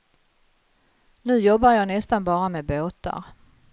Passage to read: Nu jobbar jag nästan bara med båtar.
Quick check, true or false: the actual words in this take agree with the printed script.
true